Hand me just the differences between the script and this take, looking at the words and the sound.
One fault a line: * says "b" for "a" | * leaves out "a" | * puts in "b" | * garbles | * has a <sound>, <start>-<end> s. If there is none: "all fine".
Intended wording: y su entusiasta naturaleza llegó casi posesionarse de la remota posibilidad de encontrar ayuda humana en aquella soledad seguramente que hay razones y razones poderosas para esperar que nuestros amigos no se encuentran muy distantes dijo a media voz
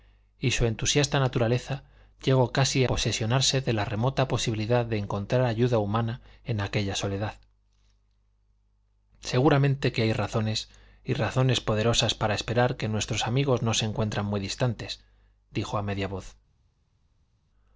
all fine